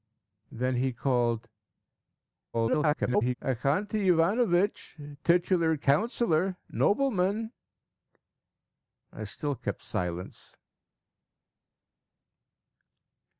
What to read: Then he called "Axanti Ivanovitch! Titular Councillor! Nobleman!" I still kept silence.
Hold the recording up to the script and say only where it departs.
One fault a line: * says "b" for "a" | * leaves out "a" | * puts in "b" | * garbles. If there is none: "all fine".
* garbles